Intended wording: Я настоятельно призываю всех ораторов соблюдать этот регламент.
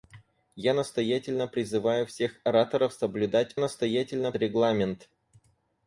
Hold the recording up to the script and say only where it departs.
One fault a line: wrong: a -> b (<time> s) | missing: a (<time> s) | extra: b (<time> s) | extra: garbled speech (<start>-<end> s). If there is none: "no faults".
wrong: этот -> настоятельно (3.6 s)